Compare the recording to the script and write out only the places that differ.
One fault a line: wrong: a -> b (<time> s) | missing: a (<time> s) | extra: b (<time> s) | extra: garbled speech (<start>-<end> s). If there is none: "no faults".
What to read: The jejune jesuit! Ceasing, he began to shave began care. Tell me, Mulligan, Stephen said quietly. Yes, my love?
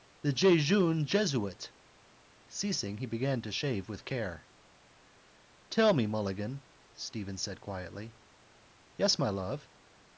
wrong: began -> with (3.9 s)